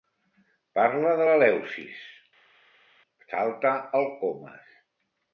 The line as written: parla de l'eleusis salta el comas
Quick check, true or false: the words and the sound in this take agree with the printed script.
true